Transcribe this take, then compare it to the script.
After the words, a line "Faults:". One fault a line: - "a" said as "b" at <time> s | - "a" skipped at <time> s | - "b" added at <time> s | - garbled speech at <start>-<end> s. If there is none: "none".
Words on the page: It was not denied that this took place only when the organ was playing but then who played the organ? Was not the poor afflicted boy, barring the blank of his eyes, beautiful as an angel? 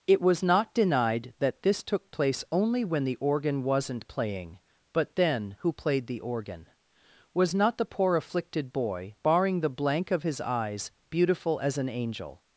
It was not denied that this took place only when the organ wasn't playing but then who played the organ? Was not the poor afflicted boy, barring the blank of his eyes, beautiful as an angel?
Faults:
- "was" said as "wasn't" at 3.6 s